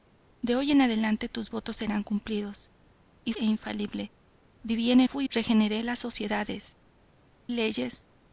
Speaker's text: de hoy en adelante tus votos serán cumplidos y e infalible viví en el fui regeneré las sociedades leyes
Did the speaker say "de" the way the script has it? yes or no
yes